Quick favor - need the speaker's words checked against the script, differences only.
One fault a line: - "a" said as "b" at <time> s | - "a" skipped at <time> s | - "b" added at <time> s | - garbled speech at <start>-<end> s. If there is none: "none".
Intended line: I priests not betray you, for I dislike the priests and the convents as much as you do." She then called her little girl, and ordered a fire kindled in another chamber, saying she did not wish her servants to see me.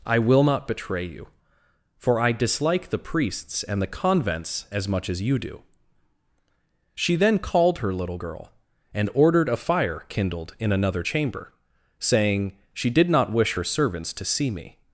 - "priests" said as "will" at 0.2 s